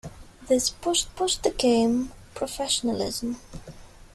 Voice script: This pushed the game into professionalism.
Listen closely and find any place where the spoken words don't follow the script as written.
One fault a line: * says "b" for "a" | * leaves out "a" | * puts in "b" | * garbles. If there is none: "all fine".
* puts in "pushed"
* leaves out "into"